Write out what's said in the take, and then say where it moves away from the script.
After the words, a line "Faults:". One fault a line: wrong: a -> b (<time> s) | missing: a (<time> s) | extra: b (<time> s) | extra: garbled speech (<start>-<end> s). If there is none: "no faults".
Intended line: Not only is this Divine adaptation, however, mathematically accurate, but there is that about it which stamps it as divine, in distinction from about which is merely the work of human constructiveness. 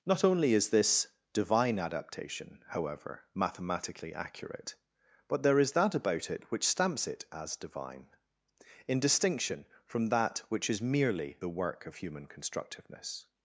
Not only is this Divine adaptation, however, mathematically accurate, but there is that about it which stamps it as divine, in distinction from that which is merely the work of human constructiveness.
Faults:
wrong: about -> that (10.1 s)